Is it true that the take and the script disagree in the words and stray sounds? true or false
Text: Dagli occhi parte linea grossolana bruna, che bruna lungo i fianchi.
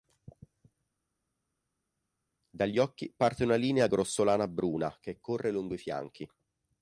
true